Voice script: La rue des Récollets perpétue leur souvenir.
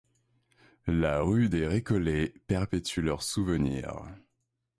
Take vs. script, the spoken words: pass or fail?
pass